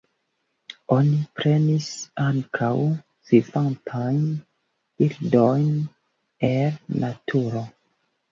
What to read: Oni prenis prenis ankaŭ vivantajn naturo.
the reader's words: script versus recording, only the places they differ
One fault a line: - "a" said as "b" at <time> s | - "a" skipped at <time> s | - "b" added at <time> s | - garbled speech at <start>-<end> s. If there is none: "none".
- "prenis" skipped at 1.9 s
- "birdojn el" added at 5.0 s